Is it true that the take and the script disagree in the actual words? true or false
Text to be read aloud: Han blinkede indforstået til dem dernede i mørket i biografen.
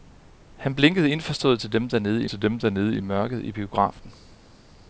true